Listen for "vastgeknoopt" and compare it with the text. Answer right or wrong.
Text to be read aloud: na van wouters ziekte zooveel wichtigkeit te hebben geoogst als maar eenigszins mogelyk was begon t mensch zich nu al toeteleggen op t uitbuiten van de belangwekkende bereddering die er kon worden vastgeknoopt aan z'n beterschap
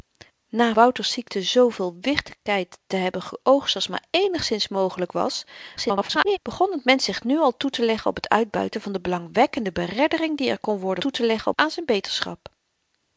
wrong